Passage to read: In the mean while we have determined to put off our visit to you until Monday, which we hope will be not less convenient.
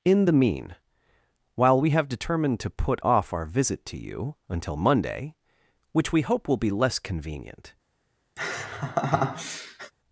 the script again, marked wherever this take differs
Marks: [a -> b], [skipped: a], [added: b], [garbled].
In the mean while we have determined to put off our visit to you until Monday, which we hope will be [skipped: not] less convenient.